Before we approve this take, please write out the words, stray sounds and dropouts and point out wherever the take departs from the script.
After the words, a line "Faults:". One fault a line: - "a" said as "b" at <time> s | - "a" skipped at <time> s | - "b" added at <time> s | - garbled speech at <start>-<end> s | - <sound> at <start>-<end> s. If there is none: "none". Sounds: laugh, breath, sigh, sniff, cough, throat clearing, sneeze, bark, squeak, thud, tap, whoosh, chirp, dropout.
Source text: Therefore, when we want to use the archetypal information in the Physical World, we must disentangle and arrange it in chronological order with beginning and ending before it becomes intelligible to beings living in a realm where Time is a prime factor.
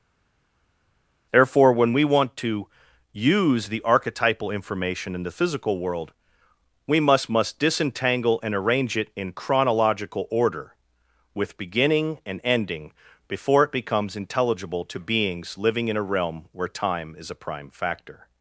Therefore, when we want to use the archetypal information in the Physical World, we must must disentangle and arrange it in chronological order with beginning and ending before it becomes intelligible to beings living in a realm where Time is a prime factor.
Faults:
- "must" added at 7.3 s